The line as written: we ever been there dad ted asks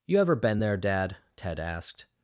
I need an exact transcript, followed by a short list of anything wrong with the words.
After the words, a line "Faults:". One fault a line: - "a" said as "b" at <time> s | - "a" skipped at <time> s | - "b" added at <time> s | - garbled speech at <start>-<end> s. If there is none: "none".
you ever been there dad ted asked
Faults:
- "we" said as "you" at 0.1 s
- "asks" said as "asked" at 1.6 s